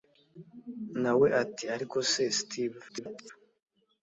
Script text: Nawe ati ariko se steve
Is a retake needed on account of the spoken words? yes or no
yes